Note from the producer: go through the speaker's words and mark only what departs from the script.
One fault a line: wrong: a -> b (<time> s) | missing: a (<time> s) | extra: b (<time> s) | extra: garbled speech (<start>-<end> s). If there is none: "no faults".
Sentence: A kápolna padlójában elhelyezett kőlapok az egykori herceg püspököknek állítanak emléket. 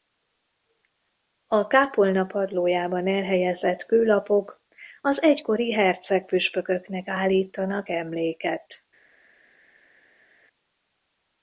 no faults